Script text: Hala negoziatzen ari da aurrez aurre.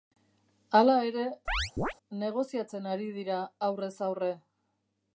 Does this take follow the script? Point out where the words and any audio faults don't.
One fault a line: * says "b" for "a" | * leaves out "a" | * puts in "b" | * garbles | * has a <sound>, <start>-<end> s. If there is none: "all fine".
* puts in "ere"
* has a chirp, 1.5-1.9 s
* says "dira" for "da"